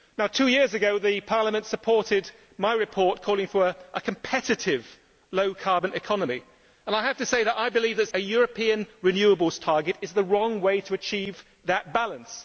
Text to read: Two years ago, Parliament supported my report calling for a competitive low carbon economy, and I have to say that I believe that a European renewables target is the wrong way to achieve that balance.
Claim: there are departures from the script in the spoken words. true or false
false